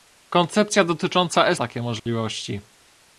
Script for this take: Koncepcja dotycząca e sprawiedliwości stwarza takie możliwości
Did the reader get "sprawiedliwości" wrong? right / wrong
wrong